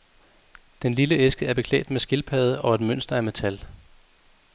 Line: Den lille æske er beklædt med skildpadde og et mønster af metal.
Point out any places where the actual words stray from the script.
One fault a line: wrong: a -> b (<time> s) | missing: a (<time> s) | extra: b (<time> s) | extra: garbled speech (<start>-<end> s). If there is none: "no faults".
no faults